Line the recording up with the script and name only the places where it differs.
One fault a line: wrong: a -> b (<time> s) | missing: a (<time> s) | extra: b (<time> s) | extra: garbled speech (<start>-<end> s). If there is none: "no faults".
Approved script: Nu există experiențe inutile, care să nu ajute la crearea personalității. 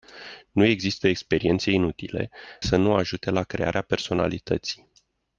missing: care (2.3 s)